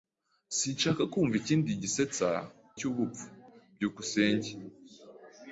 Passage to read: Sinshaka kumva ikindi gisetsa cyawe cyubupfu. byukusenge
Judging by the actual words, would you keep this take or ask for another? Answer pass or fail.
fail